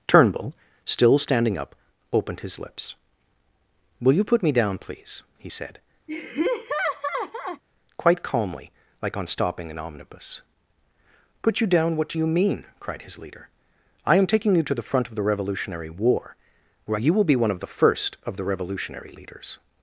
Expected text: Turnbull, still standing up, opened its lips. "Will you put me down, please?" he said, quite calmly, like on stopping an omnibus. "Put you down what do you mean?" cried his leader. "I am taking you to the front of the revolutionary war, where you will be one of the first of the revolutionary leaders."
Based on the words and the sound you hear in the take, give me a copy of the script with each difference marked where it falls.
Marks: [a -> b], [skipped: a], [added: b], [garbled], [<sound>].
Turnbull, still standing up, opened [its -> his] lips. "Will you put me down, please?" he said, [laugh] quite calmly, like on stopping an omnibus. "Put you down what do you mean?" cried his leader. "I am taking you to the front of the revolutionary war, where you will be one of the first of the revolutionary leaders."